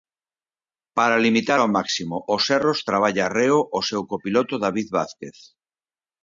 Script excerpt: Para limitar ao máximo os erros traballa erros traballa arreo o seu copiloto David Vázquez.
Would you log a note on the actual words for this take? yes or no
yes